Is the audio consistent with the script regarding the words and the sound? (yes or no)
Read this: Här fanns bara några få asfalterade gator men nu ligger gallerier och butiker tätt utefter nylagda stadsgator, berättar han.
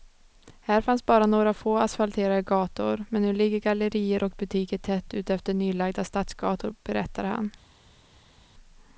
yes